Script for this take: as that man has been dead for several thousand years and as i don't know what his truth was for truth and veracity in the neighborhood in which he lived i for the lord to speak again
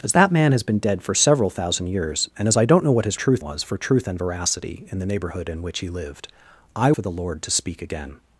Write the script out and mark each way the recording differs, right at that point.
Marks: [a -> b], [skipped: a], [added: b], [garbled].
as that man has been dead for several thousand years and as i don't know what his truth was for truth and veracity in the neighborhood in which he lived i for the lord to speak again